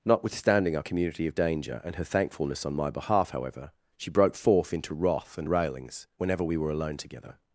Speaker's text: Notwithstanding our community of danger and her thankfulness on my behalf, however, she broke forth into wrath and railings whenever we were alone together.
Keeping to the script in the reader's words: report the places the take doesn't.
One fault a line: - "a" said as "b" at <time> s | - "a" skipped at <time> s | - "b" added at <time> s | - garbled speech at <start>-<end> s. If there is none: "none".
none